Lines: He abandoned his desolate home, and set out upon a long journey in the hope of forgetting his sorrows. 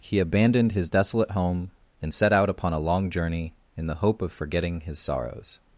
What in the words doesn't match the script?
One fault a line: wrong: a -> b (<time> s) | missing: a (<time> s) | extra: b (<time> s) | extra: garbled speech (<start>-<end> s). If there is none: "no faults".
no faults